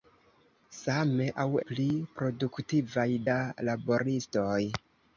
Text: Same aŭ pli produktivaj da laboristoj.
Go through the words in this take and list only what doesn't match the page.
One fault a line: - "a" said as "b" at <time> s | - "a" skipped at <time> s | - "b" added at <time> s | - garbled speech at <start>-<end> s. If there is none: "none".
none